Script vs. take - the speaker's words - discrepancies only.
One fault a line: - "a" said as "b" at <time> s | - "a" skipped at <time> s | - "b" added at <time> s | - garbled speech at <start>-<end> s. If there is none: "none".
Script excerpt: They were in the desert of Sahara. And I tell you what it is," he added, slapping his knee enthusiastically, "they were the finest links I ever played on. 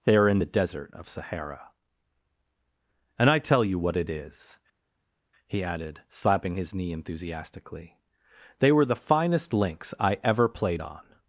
- "were" said as "are" at 0.1 s